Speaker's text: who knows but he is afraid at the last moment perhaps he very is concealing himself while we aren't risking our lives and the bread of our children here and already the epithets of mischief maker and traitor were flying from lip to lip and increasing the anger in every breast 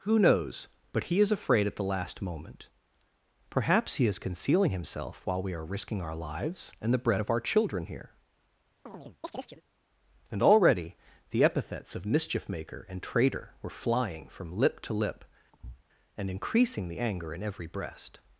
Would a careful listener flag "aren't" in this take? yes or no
yes